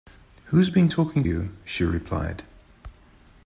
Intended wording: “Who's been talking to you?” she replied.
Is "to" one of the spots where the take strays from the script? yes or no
yes